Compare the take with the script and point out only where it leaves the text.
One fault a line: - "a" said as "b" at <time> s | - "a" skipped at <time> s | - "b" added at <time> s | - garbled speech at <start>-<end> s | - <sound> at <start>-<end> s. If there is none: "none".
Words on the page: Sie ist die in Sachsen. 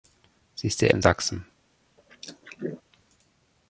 - throat clearing at 2.0-2.8 s